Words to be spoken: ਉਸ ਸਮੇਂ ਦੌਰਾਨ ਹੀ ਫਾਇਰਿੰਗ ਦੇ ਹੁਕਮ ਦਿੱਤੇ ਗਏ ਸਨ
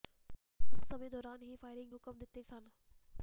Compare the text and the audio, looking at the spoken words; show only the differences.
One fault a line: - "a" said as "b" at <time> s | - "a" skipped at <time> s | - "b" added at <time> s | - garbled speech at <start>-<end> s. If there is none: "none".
- "ਦੇ" skipped at 1.9 s
- "ਗਏ" skipped at 2.4 s